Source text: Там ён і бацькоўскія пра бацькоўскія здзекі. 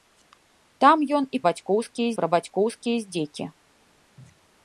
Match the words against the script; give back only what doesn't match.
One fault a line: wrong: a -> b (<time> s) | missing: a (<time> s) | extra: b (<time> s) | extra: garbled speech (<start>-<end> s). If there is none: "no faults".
no faults